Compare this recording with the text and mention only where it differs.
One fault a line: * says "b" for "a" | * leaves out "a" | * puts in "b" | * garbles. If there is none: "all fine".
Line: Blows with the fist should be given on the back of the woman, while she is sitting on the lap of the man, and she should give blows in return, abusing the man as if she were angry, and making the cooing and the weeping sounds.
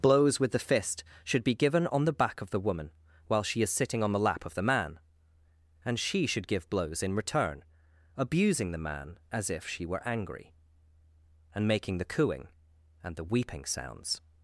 all fine